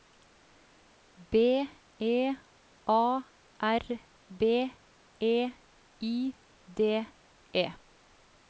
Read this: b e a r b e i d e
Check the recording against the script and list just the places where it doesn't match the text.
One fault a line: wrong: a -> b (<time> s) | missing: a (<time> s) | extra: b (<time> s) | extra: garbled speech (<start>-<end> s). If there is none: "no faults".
no faults